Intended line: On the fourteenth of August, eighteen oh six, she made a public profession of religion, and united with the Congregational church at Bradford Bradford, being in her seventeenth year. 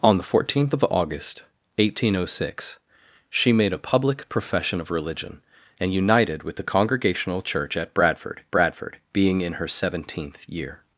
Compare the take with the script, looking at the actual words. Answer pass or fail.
pass